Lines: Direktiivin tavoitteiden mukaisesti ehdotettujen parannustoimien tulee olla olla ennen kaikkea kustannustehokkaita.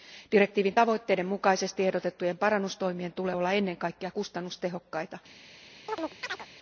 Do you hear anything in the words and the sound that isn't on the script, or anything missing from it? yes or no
yes